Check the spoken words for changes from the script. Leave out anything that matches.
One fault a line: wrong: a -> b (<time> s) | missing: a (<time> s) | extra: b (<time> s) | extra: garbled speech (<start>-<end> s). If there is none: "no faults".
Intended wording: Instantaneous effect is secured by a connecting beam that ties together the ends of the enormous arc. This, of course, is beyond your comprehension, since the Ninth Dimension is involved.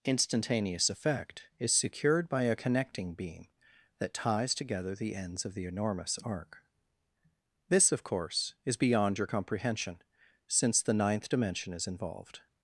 no faults